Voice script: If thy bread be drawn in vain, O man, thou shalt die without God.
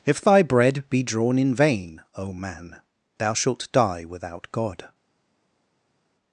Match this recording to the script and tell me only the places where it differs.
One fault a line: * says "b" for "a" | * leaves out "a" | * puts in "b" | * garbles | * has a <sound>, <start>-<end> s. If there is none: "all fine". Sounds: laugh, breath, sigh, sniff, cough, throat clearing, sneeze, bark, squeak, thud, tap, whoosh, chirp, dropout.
all fine